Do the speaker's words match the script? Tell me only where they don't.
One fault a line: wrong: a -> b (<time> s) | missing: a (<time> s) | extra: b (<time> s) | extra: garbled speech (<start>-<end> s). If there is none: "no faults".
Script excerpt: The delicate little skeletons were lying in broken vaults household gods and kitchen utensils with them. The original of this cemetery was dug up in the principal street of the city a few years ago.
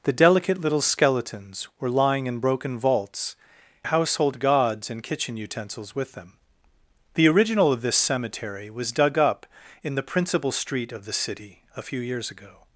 no faults